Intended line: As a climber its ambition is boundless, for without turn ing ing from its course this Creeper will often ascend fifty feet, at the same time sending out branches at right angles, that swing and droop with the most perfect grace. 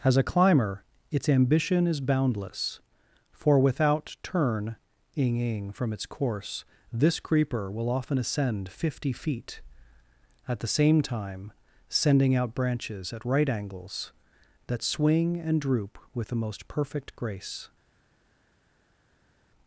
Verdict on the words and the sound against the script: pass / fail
pass